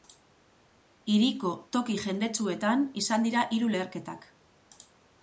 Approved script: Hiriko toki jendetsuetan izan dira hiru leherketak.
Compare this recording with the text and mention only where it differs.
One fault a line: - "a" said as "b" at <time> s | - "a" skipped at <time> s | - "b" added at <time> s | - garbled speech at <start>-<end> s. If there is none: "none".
none